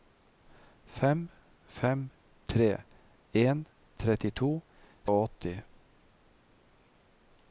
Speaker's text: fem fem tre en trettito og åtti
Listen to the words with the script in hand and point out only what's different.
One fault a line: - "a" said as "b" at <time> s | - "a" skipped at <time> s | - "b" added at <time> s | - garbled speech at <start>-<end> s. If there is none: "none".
none